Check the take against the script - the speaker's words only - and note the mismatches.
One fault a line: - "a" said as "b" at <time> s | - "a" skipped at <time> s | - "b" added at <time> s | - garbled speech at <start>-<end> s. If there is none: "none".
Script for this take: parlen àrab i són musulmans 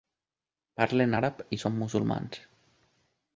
none